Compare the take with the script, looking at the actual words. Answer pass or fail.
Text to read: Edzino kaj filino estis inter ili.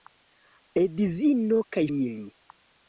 fail